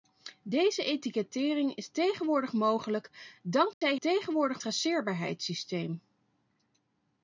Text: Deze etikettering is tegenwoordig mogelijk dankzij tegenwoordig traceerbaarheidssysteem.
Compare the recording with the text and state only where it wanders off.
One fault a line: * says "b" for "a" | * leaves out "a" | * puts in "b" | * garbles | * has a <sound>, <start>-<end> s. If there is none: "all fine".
* has a dropout, 3.7-3.8 s